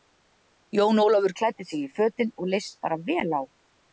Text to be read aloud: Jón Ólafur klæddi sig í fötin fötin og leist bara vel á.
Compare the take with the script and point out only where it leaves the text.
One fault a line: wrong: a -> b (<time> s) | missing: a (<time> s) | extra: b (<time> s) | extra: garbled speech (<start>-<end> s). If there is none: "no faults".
missing: fötin (2.3 s)